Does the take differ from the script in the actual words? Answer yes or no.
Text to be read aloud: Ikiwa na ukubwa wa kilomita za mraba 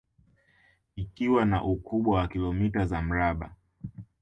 no